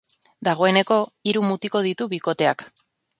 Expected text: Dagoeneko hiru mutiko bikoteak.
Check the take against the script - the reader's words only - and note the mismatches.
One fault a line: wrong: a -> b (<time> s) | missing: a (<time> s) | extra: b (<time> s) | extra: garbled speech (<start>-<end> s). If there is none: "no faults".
extra: ditu (1.9 s)